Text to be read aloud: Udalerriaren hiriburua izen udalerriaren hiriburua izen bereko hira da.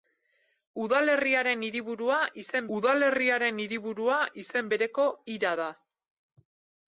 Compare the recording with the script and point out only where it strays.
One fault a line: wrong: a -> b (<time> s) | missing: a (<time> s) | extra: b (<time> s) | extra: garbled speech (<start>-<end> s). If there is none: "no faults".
no faults